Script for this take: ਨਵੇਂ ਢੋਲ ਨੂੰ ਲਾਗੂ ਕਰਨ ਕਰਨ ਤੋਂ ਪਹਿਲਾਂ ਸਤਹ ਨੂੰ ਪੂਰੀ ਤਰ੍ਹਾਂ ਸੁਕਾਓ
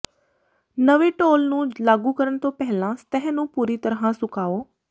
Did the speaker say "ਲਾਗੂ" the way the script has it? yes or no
yes